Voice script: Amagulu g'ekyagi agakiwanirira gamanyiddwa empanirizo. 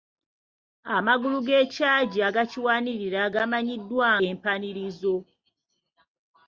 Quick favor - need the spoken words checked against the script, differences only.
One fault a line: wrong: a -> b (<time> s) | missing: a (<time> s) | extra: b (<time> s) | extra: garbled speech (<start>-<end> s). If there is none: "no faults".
no faults